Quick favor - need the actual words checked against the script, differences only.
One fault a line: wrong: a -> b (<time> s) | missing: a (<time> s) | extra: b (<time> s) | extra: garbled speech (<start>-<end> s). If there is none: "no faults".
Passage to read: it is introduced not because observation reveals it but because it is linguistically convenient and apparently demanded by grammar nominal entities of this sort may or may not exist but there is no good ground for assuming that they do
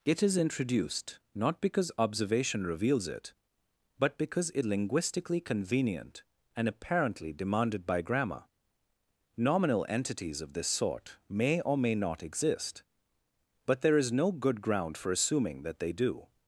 missing: is (4.7 s)